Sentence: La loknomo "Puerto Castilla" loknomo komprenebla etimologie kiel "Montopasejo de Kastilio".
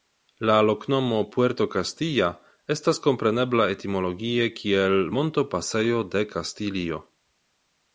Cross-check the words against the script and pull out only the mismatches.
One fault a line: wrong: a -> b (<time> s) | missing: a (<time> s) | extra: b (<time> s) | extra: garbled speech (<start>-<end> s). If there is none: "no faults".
wrong: loknomo -> estas (2.8 s)